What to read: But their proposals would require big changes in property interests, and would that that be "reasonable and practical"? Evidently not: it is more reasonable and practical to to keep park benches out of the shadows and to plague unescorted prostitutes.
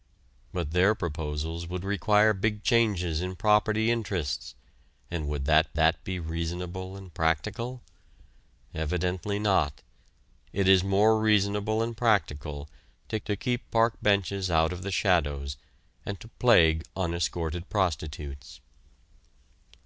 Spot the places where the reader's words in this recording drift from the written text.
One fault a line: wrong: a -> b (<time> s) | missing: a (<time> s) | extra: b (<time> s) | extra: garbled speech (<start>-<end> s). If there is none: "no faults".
no faults